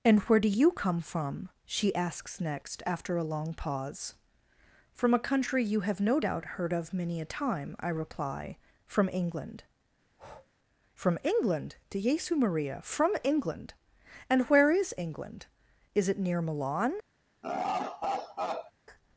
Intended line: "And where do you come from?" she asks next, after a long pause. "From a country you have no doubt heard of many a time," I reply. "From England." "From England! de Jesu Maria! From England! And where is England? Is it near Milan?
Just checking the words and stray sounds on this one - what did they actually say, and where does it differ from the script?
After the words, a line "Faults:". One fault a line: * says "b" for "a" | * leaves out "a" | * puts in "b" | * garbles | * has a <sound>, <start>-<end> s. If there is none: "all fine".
"And where do you come from?" she asks next, after a long pause. "From a country you have no doubt heard of many a time," I reply. "From England." "From England! de Jesu Maria! From England! And where is England? Is it near Milan?
Faults:
* has a breath, 10.0-10.5 s
* has a laugh, 17.4-18.7 s